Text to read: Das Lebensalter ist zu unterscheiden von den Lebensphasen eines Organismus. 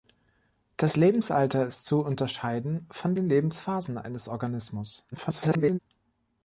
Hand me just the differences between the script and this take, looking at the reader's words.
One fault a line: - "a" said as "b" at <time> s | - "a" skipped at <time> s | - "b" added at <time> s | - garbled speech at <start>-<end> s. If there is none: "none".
- garbled speech at 5.1-5.8 s